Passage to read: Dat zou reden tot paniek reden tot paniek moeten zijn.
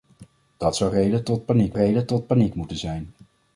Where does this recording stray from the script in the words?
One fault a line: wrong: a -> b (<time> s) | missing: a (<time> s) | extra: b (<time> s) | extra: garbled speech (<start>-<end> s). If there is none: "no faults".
no faults